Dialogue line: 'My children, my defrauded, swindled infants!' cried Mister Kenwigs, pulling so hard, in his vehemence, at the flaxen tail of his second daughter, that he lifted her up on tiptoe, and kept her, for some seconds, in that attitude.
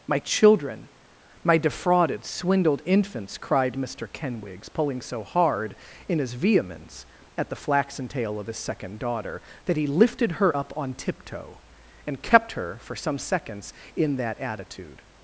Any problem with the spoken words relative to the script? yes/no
no